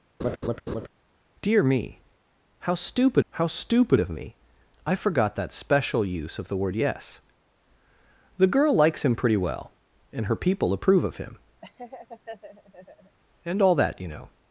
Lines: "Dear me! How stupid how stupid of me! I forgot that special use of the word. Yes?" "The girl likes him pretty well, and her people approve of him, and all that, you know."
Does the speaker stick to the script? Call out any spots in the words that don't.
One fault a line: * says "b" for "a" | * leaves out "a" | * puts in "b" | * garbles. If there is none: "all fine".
all fine